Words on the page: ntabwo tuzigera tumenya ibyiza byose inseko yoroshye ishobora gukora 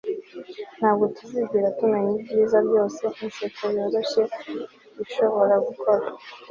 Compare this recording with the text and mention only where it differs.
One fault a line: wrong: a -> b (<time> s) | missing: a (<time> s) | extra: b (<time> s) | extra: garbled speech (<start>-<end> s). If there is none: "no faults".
no faults